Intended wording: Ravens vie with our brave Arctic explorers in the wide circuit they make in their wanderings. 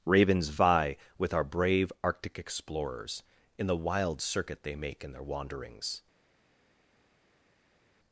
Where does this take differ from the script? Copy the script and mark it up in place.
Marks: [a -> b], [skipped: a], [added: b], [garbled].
Ravens vie with our brave Arctic explorers in the [wide -> wild] circuit they make in their wanderings.